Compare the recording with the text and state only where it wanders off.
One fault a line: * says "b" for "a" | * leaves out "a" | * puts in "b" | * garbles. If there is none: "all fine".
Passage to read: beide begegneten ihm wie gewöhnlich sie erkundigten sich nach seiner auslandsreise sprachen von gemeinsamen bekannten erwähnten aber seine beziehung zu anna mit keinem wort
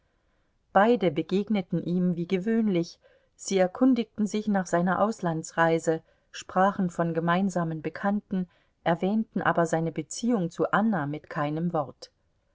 all fine